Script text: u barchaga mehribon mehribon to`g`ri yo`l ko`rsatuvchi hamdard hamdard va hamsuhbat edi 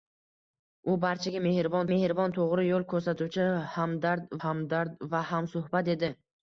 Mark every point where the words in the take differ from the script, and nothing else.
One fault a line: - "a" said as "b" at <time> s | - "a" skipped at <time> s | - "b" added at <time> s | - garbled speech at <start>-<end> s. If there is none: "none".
none